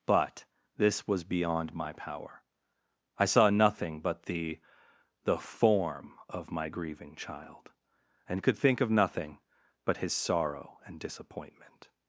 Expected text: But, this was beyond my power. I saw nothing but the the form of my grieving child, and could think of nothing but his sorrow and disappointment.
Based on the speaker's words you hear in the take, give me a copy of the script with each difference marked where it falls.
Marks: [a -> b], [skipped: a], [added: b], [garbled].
But, this was beyond my power. I saw nothing but the the form of my grieving child, and could think of nothing but his sorrow and disappointment.